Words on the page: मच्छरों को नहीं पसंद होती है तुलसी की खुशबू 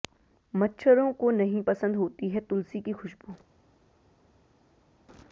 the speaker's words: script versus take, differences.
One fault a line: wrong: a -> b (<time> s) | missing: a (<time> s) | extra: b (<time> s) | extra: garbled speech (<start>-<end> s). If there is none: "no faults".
no faults